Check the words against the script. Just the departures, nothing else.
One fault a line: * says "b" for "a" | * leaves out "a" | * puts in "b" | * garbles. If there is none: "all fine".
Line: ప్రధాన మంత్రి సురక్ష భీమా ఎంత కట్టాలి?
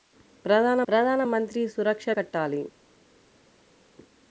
* puts in "ప్రధాన"
* leaves out "భీమా ఎంత"